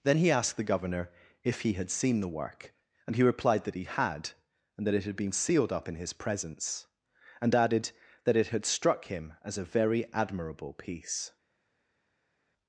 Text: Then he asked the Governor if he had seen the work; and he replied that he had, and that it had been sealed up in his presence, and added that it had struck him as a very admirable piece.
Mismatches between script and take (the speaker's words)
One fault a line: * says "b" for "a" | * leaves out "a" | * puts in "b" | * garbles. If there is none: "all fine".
all fine